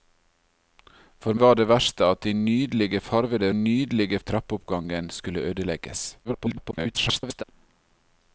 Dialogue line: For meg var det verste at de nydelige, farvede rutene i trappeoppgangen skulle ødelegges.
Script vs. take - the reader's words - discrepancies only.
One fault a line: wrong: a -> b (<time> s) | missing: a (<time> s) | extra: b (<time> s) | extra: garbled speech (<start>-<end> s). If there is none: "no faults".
missing: meg (1.4 s)
wrong: rutene -> nydelige (3.6 s)
extra: garbled speech (6.2-7.4 s)